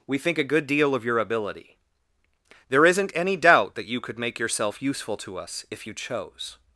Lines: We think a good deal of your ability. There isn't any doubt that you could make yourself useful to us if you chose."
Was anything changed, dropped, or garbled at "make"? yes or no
no